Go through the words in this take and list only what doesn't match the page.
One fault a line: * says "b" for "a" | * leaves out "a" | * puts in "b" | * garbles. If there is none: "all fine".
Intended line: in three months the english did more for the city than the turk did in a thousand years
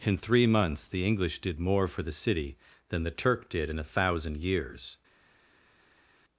all fine